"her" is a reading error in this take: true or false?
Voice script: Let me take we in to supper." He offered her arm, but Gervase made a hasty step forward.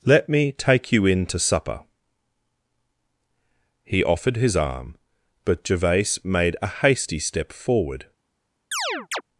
true